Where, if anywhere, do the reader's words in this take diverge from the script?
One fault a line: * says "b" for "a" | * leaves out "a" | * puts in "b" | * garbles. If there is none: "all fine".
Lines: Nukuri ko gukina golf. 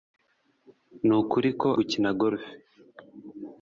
all fine